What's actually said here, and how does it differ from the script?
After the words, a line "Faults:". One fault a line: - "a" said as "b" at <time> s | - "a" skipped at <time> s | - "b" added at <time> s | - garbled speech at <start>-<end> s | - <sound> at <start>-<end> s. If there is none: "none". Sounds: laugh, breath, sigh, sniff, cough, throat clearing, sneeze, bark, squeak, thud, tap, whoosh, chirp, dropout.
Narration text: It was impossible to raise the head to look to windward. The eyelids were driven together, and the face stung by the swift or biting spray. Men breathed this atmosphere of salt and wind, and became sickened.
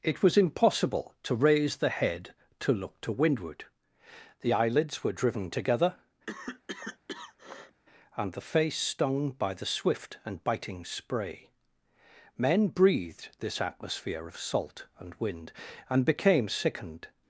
It was impossible to raise the head to look to windward. The eyelids were driven together, and the face stung by the swift and biting spray. Men breathed this atmosphere of salt and wind, and became sickened.
Faults:
- cough at 6.3-7.8 s
- "or" said as "and" at 10.2 s